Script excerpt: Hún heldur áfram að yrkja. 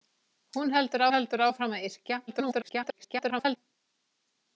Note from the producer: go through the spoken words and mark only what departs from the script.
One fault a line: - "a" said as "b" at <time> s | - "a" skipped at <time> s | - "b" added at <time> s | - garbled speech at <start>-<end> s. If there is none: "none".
- "heldur" added at 1.1 s
- garbled speech at 2.3-3.6 s